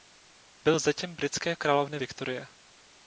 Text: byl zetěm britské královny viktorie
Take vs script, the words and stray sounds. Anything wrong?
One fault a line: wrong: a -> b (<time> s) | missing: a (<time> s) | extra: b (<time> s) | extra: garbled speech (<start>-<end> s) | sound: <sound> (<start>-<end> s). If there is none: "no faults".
no faults